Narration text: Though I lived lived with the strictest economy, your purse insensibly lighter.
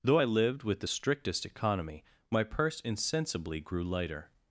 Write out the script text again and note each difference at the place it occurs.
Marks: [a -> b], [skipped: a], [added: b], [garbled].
Though I lived [skipped: lived] with the strictest economy, [your -> my] purse insensibly [added: grew] lighter.